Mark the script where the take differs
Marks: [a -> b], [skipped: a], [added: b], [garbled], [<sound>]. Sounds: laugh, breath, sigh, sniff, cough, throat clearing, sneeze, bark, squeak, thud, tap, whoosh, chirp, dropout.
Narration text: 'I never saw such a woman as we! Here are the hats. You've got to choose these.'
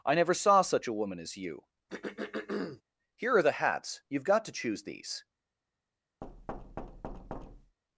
'I never saw such a woman as [we! -> you] [throat clearing] Here are the hats. You've got to choose these.' [thud]